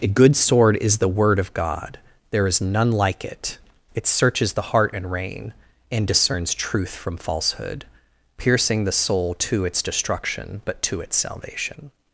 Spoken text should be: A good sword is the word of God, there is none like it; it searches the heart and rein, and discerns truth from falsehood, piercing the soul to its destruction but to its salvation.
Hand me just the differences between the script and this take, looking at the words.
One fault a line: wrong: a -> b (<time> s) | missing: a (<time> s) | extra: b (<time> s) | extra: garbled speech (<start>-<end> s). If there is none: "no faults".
no faults